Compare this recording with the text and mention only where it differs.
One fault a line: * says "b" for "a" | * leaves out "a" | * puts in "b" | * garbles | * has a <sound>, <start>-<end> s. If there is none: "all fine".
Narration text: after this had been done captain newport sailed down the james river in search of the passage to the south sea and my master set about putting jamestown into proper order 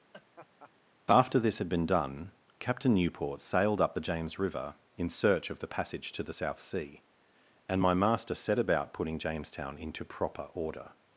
* has a laugh, 0.1-0.7 s
* says "up" for "down"